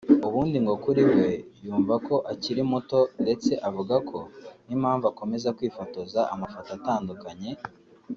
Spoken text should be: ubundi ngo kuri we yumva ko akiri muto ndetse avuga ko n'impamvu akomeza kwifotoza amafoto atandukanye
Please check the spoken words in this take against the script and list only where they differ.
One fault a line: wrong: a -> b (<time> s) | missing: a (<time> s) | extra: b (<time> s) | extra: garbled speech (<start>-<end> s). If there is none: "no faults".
no faults